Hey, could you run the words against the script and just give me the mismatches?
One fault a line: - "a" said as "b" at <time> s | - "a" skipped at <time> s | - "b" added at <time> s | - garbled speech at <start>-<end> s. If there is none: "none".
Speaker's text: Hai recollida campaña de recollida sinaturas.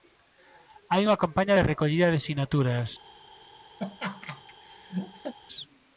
- "recollida" said as "unha" at 1.1 s
- "de" added at 2.1 s